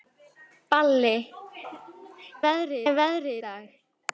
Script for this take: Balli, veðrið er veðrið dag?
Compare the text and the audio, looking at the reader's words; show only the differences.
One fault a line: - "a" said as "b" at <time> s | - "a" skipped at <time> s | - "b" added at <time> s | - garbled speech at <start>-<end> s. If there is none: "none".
none